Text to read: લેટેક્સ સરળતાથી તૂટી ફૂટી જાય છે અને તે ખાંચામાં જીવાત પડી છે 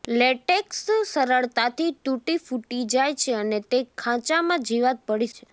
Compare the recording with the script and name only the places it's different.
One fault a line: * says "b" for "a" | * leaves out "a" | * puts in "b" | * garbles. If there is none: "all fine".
all fine